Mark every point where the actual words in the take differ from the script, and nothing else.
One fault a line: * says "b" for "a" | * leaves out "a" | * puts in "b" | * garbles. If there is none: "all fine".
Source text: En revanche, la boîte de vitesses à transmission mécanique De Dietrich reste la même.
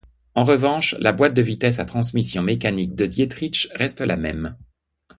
all fine